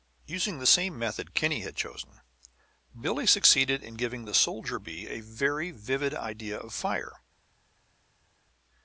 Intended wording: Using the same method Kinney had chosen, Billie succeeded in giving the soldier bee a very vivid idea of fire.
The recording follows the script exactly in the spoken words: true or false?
true